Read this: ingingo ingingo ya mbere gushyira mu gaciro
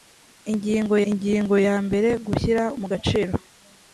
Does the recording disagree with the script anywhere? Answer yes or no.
no